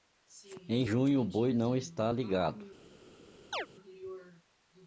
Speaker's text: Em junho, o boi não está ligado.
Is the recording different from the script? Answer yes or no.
no